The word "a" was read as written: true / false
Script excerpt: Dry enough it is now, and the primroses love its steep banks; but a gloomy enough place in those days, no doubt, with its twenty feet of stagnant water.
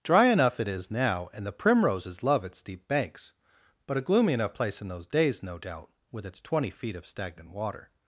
true